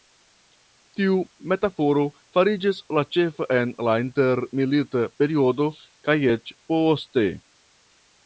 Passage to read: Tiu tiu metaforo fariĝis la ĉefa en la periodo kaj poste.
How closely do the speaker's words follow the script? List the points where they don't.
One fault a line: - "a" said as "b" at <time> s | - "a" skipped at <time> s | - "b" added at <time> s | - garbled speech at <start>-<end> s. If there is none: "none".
- "tiu" skipped at 1.2 s
- "intermilita" added at 4.0 s
- "eĉ" added at 6.3 s